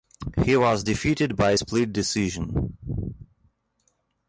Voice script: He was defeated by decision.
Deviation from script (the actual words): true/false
true